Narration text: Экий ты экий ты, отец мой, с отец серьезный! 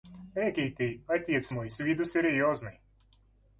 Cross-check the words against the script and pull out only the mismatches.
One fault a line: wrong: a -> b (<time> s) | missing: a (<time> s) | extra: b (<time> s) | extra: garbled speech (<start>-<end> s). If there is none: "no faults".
missing: экий ты (1.0 s)
wrong: отец -> виду (1.8 s)